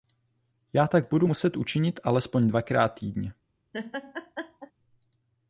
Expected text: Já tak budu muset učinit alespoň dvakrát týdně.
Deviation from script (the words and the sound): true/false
true